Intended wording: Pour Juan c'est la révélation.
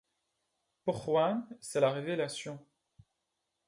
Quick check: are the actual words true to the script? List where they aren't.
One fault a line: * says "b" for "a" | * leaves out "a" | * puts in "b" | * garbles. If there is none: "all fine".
all fine